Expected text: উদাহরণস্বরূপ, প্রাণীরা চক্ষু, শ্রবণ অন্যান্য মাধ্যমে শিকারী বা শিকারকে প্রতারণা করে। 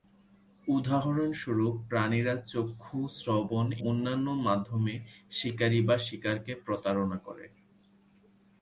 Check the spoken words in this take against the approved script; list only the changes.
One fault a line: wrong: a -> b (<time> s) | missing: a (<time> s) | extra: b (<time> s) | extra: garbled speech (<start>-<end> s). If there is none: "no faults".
no faults